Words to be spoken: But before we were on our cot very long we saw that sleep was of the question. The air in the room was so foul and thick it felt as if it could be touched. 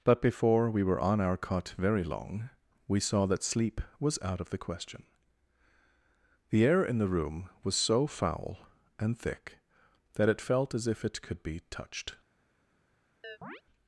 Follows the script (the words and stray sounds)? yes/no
no